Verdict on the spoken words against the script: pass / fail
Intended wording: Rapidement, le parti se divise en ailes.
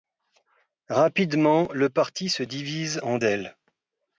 pass